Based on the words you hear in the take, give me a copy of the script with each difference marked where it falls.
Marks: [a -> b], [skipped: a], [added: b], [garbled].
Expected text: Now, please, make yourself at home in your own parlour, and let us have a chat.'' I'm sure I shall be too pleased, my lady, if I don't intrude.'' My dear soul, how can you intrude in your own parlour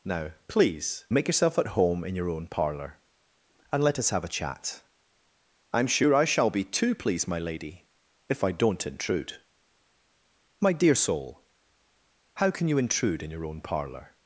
Now, please, make yourself at home in your own parlour, and let us have a chat.'' I'm sure I shall be too pleased, my lady, if I don't intrude.'' My dear soul, how can you intrude in your own parlour